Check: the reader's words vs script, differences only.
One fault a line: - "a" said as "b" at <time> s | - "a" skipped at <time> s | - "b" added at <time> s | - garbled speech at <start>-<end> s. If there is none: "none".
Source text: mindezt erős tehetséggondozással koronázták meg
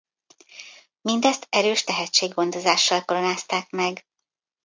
none